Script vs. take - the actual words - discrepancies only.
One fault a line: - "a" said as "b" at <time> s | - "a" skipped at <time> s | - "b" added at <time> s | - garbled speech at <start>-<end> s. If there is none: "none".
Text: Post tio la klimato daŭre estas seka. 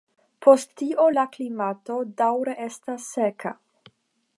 none